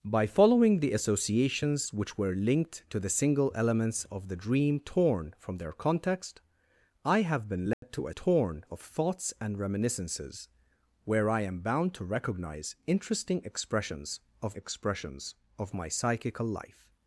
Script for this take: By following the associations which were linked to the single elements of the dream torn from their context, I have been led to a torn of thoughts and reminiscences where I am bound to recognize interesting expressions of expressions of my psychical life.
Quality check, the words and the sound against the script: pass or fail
fail